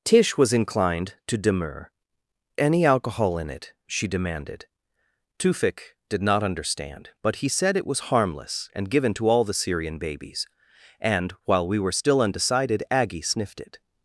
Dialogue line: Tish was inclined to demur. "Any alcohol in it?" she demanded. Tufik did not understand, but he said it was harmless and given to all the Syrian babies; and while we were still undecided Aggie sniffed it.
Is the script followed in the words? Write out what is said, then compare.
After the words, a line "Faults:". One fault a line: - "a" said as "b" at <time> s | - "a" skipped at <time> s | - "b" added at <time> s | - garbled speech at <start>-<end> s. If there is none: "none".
Tish was inclined to demur. "Any alcohol in it?" she demanded. Tufik did not understand, but he said it was harmless and given to all the Syrian babies; and while we were still undecided Aggie sniffed it.
Faults:
none